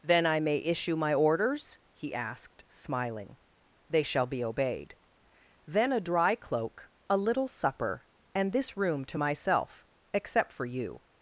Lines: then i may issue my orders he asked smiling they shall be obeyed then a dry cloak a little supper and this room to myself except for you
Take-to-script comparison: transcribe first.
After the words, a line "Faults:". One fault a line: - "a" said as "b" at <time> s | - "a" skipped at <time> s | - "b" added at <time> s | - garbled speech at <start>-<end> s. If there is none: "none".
then i may issue my orders he asked smiling they shall be obeyed then a dry cloak a little supper and this room to myself except for you
Faults:
none